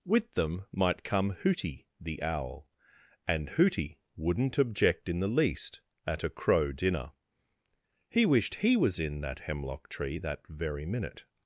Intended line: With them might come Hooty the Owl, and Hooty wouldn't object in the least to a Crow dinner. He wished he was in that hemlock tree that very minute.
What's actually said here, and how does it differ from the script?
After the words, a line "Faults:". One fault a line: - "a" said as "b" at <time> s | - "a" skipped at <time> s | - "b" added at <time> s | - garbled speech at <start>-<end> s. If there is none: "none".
With them might come Hooty the Owl, and Hooty wouldn't object in the least at a Crow dinner. He wished he was in that hemlock tree that very minute.
Faults:
- "to" said as "at" at 6.1 s